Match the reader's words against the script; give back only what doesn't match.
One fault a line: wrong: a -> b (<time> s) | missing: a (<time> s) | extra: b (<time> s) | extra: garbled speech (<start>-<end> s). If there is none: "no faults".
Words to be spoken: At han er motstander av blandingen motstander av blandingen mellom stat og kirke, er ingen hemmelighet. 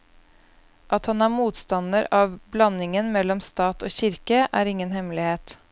missing: motstander av blandingen (3.1 s)